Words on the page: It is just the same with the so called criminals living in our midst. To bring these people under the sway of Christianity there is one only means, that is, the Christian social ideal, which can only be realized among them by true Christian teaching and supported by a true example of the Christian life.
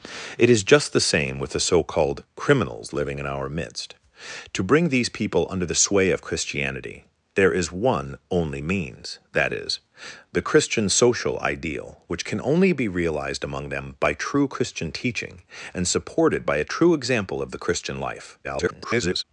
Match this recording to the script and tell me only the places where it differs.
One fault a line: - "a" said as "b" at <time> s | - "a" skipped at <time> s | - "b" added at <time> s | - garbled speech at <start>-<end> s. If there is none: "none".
- garbled speech at 18.4-19.2 s